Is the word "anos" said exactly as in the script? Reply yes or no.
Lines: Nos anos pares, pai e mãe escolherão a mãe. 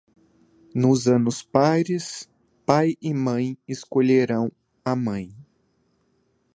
yes